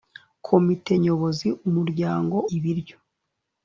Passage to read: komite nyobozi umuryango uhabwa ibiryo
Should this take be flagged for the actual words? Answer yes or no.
yes